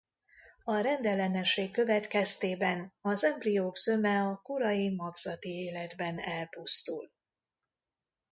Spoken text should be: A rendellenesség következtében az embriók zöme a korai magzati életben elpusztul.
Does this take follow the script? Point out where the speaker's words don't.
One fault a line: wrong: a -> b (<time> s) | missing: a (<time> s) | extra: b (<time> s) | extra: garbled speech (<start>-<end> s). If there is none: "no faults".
no faults